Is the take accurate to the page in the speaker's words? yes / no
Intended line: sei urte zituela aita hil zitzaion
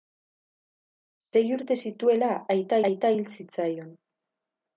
no